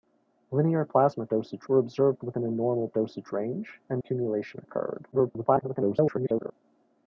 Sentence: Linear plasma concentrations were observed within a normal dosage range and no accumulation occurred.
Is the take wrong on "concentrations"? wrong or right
wrong